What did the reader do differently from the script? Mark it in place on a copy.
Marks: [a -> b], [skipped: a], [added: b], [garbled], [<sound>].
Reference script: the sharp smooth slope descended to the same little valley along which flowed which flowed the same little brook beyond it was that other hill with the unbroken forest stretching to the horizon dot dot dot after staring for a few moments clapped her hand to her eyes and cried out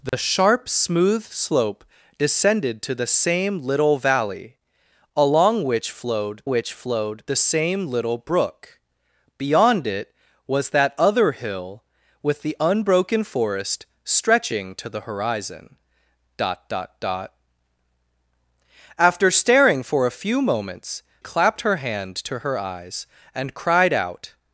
the [dropout] sharp smooth slope descended to the same little valley along which flowed which flowed the same little brook beyond it was that other hill with the unbroken forest stretching to the horizon dot dot dot after staring for a few moments clapped her hand to her eyes and cried out